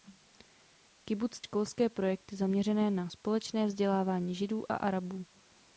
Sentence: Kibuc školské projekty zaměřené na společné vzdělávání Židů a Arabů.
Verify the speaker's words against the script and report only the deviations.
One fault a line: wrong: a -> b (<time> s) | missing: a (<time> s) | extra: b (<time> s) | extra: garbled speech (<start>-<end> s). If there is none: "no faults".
no faults